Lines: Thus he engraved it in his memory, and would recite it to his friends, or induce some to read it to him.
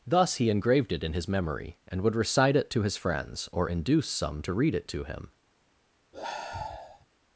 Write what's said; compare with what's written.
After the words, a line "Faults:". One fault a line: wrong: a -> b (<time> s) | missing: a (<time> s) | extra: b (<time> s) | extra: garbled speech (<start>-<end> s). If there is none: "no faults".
Thus he engraved it in his memory, and would recite it to his friends, or induce some to read it to him.
Faults:
no faults